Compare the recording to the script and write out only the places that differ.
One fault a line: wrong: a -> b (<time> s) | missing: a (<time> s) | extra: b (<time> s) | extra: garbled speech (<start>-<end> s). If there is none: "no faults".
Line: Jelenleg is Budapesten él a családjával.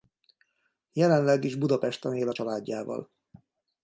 no faults